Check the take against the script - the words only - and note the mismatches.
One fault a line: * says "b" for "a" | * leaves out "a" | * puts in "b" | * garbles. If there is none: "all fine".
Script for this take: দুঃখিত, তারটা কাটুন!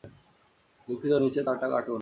* puts in "নিচের"